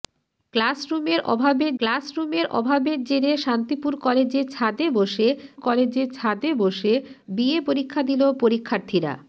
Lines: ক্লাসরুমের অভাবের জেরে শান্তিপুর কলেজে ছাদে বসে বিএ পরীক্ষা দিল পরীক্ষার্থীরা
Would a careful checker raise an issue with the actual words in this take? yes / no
yes